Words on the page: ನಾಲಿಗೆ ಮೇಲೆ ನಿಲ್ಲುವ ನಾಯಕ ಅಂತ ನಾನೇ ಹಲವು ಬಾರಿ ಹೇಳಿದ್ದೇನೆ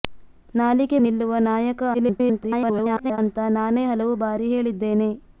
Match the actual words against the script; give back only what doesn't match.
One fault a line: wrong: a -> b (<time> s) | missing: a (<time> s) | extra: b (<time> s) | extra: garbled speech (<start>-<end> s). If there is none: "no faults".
missing: ಮೇಲೆ (1.0 s)
extra: garbled speech (1.9-3.2 s)